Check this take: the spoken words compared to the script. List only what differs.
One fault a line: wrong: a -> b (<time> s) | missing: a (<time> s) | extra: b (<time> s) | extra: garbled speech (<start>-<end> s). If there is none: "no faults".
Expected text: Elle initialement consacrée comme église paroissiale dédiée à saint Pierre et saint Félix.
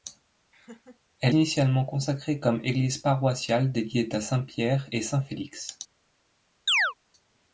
no faults